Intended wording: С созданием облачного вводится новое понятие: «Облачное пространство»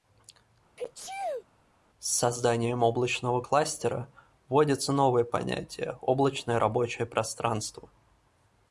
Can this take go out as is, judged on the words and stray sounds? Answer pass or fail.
fail